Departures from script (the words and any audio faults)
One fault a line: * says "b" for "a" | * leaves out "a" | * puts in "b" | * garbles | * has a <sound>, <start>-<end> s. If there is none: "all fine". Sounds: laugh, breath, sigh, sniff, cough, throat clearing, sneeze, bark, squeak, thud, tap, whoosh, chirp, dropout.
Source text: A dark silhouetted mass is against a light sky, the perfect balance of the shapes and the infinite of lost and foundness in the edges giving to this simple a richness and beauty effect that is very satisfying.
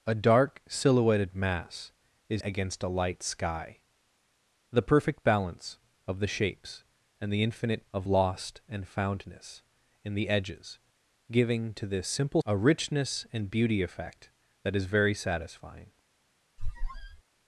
* has a squeak, 16.6-17.2 s